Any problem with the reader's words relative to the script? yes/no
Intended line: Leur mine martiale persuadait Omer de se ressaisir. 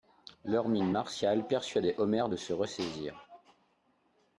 no